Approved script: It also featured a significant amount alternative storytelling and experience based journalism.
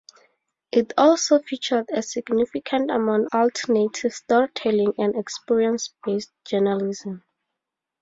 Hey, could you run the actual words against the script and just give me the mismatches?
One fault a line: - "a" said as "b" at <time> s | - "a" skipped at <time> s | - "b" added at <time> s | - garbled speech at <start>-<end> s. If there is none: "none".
none